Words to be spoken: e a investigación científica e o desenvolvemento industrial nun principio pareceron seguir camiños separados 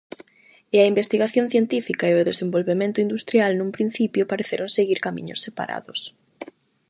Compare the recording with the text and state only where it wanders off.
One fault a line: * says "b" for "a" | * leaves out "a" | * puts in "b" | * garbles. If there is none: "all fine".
all fine